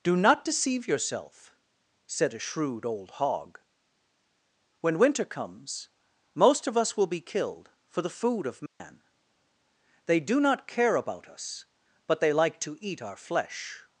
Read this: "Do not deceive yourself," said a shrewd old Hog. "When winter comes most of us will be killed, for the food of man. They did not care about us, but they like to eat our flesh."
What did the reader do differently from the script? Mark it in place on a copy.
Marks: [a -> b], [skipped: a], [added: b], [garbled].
"Do not deceive yourself," said a shrewd old Hog. "When winter comes most of us will be killed, for the food of man. They [did -> do] not care about us, but they like to eat our flesh."